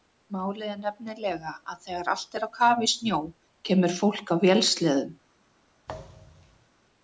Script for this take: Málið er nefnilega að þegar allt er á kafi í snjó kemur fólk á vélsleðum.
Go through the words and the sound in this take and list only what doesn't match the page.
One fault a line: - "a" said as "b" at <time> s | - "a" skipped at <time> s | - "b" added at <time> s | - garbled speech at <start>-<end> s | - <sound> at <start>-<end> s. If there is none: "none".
- thud at 5.9-6.7 s